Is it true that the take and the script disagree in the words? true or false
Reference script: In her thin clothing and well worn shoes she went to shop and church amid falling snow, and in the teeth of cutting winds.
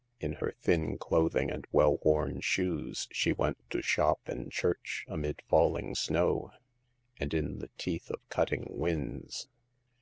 false